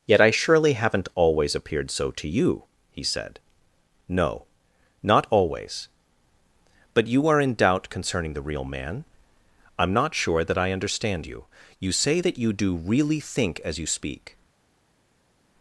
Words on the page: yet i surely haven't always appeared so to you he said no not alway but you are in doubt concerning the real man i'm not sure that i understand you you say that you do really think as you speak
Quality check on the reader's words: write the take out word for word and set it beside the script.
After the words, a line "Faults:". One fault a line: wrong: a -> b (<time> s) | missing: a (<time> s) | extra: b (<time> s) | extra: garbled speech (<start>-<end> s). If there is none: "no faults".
yet i surely haven't always appeared so to you he said no not always but you are in doubt concerning the real man i'm not sure that i understand you you say that you do really think as you speak
Faults:
wrong: alway -> always (5.3 s)